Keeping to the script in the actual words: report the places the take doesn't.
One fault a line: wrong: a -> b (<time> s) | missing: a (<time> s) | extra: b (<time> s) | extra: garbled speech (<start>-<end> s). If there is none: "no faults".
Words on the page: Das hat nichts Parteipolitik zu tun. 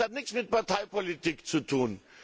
extra: mit (0.3 s)